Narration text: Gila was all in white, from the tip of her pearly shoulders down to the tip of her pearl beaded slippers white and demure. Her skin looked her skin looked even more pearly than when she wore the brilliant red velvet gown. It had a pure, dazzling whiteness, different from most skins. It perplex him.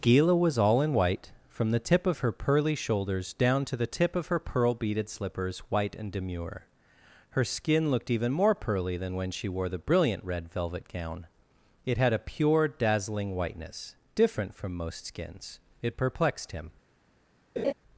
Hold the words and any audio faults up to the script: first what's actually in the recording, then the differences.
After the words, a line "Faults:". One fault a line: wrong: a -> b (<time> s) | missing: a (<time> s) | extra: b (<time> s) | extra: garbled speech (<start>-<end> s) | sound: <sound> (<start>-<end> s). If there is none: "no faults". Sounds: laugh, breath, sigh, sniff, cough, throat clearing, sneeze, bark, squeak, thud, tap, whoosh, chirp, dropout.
Gila was all in white, from the tip of her pearly shoulders down to the tip of her pearl beaded slippers white and demure. Her skin looked even more pearly than when she wore the brilliant red velvet gown. It had a pure, dazzling whiteness, different from most skins. It perplexed him.
Faults:
missing: her skin looked (8.1 s)
wrong: perplex -> perplexed (16.0 s)
sound: laugh (17.6-17.7 s)